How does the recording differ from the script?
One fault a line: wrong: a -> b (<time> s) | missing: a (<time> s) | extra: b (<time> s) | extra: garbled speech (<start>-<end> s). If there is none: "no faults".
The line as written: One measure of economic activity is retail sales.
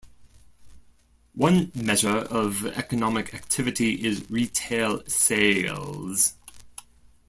no faults